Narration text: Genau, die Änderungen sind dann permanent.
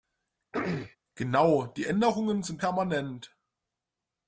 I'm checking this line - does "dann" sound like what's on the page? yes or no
no